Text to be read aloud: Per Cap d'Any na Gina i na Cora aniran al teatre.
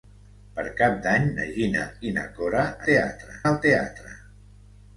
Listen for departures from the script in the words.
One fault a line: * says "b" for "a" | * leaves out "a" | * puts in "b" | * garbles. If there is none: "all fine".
* says "teatre" for "aniran"